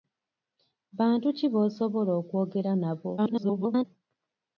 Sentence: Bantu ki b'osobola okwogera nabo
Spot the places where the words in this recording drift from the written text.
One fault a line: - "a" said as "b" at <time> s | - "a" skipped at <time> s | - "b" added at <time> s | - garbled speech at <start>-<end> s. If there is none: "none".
- garbled speech at 3.2-3.9 s